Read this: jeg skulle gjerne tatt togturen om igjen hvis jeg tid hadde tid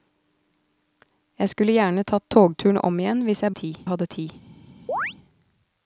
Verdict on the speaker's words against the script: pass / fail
pass